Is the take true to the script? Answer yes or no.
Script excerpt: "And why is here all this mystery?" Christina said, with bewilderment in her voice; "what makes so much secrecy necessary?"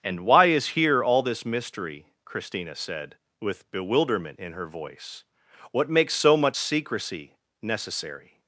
yes